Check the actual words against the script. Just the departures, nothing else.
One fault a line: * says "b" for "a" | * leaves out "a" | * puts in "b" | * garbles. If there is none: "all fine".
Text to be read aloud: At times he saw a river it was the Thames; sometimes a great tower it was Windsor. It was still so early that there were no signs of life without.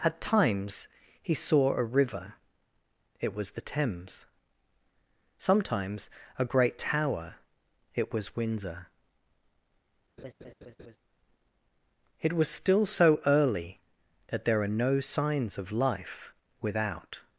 * says "are" for "were"